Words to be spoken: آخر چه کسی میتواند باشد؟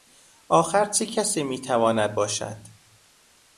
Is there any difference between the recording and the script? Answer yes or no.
no